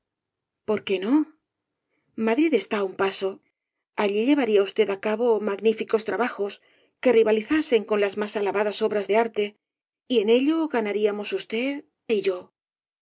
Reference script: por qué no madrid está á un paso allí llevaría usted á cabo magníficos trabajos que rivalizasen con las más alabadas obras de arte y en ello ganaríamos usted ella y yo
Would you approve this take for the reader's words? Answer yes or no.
no